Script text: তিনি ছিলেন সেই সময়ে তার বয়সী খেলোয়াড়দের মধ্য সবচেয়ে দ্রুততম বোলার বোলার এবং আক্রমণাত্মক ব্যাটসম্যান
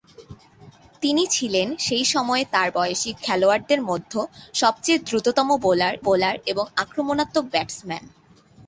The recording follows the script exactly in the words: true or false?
true